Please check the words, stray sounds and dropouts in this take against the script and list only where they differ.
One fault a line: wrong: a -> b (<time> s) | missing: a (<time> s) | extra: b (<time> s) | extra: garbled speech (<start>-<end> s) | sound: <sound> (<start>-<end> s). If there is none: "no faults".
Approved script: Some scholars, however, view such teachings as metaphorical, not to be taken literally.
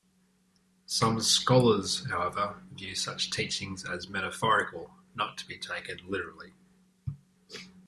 no faults